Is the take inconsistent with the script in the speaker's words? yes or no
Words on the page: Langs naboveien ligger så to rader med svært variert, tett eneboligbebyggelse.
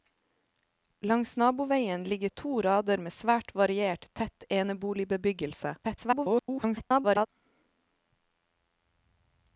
yes